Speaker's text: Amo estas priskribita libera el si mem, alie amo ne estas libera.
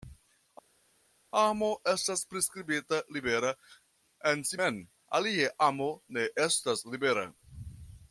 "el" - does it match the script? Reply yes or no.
no